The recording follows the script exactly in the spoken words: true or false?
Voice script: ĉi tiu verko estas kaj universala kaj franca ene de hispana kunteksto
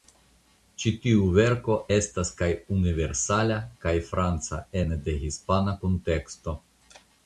true